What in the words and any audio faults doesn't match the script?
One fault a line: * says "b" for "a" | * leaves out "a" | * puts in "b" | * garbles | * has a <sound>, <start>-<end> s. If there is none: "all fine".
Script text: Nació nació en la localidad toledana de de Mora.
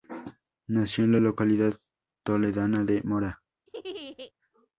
* leaves out "nació"
* leaves out "de"
* has a laugh, 3.7-4.3 s